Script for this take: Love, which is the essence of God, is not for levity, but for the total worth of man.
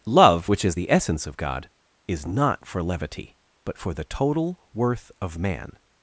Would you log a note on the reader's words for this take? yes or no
no